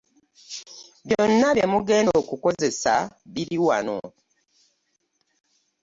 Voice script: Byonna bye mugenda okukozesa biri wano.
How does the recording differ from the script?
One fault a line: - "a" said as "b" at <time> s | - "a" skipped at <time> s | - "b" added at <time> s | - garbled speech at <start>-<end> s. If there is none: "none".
none